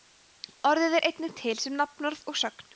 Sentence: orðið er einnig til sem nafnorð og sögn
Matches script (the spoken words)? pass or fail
pass